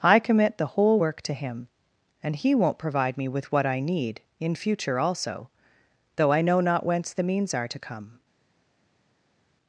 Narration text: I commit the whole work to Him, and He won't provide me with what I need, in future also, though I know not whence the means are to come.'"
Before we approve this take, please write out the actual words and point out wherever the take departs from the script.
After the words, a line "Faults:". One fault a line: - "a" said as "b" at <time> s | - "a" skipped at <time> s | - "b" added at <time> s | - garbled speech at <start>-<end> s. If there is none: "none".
I commit the whole work to Him, and He won't provide me with what I need, in future also, though I know not whence the means are to come.'"
Faults:
none